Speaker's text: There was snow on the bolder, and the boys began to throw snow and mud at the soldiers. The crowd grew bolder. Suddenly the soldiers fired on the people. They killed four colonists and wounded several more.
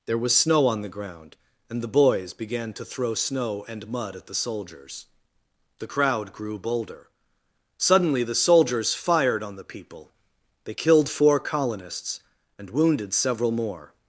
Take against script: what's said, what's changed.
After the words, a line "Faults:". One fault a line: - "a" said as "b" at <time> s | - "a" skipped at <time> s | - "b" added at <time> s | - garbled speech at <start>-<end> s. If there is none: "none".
There was snow on the ground, and the boys began to throw snow and mud at the soldiers. The crowd grew bolder. Suddenly the soldiers fired on the people. They killed four colonists and wounded several more.
Faults:
- "bolder" said as "ground" at 0.9 s